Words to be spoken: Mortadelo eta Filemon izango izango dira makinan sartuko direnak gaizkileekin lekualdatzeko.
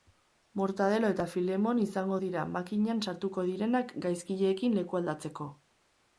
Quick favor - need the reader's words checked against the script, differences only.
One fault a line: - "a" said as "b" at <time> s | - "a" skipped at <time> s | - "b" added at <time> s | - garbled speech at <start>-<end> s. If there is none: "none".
- "izango" skipped at 2.2 s